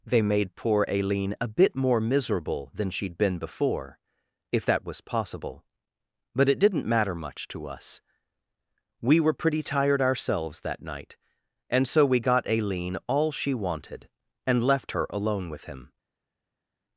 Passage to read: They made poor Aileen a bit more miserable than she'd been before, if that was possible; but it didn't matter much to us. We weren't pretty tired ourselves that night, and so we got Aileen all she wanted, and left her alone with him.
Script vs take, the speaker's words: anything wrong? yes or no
yes